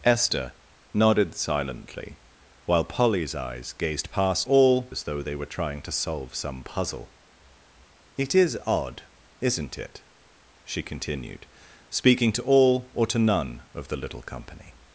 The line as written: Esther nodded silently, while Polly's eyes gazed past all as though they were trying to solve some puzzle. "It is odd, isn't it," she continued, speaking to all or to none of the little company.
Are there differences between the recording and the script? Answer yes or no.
no